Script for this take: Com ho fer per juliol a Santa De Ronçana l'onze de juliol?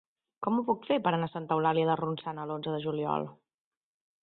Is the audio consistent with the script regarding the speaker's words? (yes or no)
no